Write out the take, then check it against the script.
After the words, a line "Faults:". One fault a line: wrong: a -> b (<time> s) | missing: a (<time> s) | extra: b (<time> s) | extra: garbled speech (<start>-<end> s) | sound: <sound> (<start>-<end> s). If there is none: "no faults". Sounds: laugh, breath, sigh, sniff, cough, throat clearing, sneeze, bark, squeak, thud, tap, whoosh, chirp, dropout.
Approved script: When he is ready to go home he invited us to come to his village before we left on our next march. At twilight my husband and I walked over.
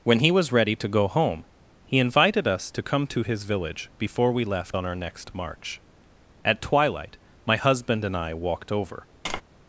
When he was ready to go home he invited us to come to his village before we left on our next march. At twilight my husband and I walked over.
Faults:
wrong: is -> was (0.3 s)
sound: tap (9.3-9.4 s)